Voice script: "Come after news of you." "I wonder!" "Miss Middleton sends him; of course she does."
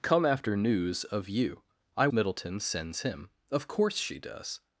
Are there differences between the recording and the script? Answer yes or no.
yes